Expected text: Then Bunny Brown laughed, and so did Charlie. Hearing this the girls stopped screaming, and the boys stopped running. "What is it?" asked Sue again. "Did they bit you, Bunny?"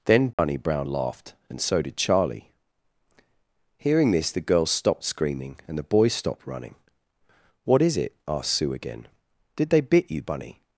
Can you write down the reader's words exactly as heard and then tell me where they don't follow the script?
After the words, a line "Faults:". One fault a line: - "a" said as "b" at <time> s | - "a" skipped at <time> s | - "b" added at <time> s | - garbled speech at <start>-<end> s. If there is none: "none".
Then Bunny Brown laughed, and so did Charlie. Hearing this the girls stopped screaming, and the boys stopped running. "What is it?" asked Sue again. "Did they bit you, Bunny?"
Faults:
none